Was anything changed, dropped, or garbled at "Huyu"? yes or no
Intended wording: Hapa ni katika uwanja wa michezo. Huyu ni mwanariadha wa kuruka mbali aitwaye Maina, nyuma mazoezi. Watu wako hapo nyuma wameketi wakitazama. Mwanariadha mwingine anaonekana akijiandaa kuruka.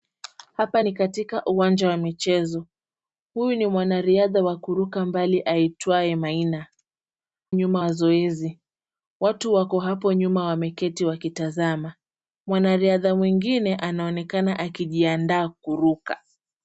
no